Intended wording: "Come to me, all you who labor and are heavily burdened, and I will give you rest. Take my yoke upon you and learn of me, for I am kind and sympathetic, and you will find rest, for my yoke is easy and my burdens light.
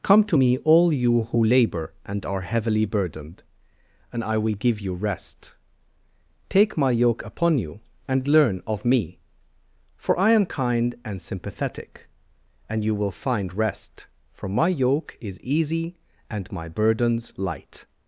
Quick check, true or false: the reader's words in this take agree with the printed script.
true